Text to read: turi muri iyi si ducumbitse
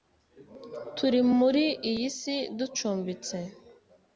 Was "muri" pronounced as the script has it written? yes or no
yes